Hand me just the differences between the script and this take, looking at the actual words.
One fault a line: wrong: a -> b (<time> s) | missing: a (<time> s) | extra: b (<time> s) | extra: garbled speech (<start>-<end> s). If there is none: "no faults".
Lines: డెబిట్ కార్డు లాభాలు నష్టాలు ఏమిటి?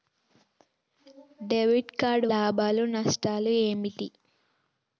no faults